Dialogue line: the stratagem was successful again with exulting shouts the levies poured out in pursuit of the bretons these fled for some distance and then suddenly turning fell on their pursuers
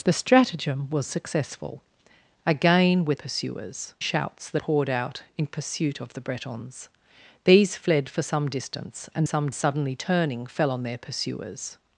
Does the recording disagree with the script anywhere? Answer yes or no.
yes